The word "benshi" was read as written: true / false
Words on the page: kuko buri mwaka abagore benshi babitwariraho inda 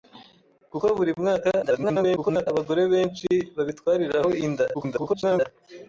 true